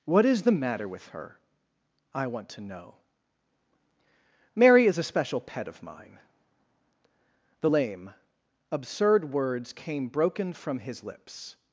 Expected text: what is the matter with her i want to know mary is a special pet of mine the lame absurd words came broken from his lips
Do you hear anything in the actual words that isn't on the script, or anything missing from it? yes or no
no